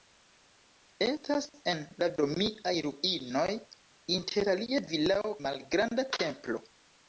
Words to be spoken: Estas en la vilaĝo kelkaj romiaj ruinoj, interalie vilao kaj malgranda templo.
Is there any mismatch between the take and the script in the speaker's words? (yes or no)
yes